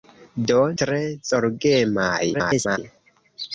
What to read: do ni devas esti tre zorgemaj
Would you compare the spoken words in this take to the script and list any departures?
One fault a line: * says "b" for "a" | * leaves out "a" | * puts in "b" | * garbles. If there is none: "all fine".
* leaves out "ni devas esti"
* garbles